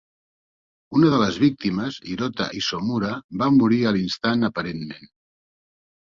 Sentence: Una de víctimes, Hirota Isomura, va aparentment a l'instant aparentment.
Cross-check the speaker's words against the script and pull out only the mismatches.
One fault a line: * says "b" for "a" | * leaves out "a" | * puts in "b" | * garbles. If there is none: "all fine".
* puts in "les"
* says "morir" for "aparentment"